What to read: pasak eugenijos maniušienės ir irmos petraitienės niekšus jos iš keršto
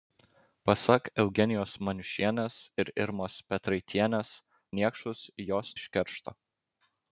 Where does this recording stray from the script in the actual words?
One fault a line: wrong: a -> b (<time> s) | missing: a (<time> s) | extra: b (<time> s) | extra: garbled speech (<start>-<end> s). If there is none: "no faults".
no faults